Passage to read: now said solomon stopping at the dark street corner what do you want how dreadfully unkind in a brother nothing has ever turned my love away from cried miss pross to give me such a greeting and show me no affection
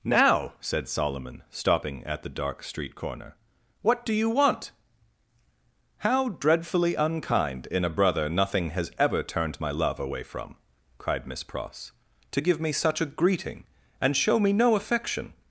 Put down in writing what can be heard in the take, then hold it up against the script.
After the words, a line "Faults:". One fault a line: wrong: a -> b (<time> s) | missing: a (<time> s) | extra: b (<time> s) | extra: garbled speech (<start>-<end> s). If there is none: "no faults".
now said solomon stopping at the dark street corner what do you want how dreadfully unkind in a brother nothing has ever turned my love away from cried miss pross to give me such a greeting and show me no affection
Faults:
no faults